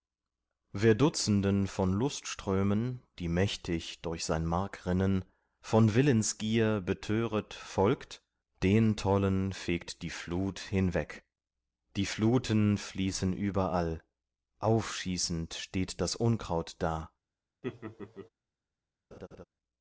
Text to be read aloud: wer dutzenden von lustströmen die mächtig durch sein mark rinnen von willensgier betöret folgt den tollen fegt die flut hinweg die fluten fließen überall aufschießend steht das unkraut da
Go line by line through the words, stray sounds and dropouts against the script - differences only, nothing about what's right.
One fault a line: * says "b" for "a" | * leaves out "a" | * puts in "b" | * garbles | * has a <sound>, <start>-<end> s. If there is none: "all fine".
* has a laugh, 17.6-18.3 s
* has a laugh, 19.1-19.4 s